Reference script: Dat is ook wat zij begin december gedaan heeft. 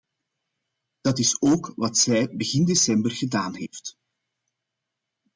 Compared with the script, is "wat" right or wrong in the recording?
right